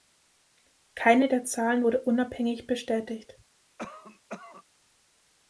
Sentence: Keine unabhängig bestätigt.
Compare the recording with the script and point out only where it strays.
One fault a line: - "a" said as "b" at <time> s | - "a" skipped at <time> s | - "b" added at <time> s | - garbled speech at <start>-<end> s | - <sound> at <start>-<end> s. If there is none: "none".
- "der Zahlen wurde" added at 1.3 s
- cough at 3.8-4.6 s